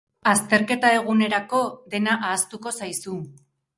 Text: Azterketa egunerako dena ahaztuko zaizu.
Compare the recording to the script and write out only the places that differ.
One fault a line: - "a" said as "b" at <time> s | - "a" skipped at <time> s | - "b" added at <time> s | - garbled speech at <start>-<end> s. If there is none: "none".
none